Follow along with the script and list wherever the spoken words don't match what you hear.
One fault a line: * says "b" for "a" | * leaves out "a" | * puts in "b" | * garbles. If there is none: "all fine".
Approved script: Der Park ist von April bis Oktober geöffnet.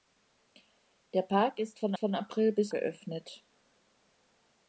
* puts in "von"
* leaves out "Oktober"